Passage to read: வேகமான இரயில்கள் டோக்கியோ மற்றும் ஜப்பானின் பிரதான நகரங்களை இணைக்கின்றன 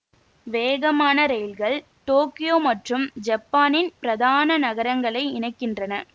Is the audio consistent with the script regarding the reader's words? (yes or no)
yes